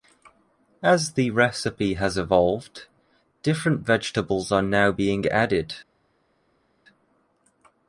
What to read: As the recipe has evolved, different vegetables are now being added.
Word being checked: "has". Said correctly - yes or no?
yes